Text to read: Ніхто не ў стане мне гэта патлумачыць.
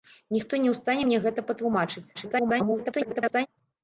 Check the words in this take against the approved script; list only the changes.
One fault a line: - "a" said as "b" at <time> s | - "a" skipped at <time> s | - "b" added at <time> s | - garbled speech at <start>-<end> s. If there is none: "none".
- garbled speech at 2.1-3.5 s